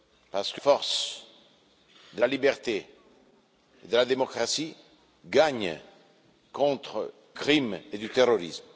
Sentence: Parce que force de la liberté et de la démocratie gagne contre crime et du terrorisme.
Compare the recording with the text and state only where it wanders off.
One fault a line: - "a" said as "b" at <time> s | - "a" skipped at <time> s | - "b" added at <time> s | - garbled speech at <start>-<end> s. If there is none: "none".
none